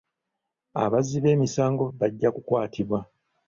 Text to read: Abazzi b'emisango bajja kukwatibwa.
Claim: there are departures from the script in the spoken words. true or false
false